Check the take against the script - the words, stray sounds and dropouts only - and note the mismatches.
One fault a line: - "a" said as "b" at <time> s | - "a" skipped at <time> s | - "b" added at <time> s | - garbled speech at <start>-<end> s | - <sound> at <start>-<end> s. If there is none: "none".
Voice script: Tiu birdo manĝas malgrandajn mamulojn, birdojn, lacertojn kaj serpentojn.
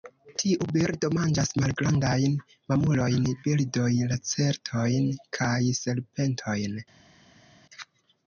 none